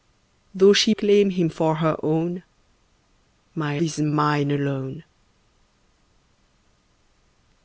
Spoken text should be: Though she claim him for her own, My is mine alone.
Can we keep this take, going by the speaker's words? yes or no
yes